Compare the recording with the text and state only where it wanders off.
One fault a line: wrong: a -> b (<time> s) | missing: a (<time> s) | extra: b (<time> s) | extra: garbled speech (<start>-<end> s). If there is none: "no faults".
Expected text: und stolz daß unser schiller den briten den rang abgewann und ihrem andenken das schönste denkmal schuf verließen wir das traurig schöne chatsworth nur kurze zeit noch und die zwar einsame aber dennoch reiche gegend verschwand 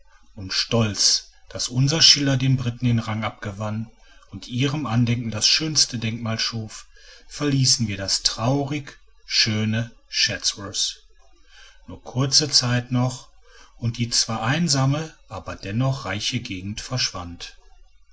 no faults